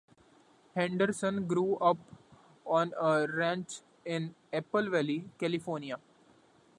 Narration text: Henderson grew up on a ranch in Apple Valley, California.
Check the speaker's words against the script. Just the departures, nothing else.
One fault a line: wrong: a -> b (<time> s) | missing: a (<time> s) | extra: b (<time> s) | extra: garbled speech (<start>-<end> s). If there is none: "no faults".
no faults